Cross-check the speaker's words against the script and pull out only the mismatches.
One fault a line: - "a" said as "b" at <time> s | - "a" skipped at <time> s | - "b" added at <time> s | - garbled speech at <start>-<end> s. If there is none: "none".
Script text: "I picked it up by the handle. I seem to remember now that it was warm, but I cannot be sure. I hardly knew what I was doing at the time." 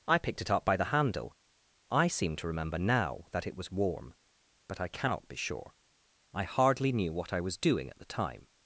none